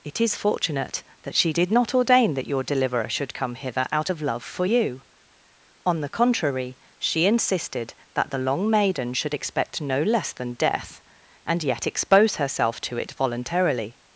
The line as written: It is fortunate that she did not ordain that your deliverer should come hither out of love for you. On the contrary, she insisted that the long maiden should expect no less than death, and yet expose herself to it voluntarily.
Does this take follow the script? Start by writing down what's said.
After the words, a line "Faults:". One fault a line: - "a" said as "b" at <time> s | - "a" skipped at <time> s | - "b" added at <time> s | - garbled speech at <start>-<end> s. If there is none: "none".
It is fortunate that she did not ordain that your deliverer should come hither out of love for you. On the contrary, she insisted that the long maiden should expect no less than death, and yet expose herself to it voluntarily.
Faults:
none